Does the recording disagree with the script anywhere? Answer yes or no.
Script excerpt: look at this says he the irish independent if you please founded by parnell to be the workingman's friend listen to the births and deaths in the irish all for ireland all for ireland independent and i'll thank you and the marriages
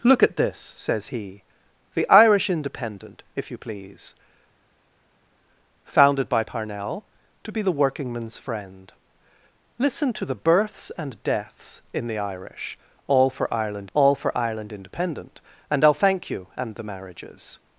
no